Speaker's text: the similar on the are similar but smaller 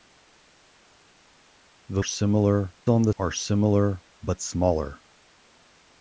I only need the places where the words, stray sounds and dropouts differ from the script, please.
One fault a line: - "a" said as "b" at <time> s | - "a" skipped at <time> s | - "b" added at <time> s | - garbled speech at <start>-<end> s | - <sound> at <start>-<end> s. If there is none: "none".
none